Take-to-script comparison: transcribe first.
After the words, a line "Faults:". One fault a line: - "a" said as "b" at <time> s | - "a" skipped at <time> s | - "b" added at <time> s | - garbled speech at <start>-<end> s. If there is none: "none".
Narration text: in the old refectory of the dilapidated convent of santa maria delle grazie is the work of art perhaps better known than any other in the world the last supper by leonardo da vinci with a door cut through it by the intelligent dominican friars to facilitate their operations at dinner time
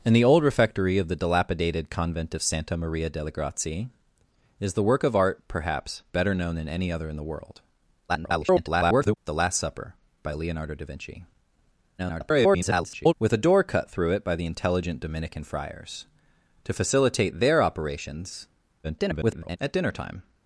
in the old refectory of the dilapidated convent of santa maria delle grazie is the work of art perhaps better known than any other in the world [garbled] the last supper by leonardo da vinci [garbled] with a door cut through it by the intelligent dominican friars to facilitate their operations [garbled] at dinner time
Faults:
- garbled speech at 8.1-9.2 s
- garbled speech at 12.0-13.1 s
- garbled speech at 18.8-19.6 s